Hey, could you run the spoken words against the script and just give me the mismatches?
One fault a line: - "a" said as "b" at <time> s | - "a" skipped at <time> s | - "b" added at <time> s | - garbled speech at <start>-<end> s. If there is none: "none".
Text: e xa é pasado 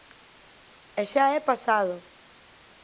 none